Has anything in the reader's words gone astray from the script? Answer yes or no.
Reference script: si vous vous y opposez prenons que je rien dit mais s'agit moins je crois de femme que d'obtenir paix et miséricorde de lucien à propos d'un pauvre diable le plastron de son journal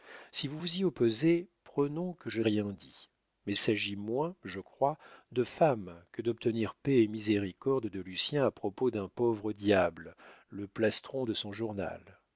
no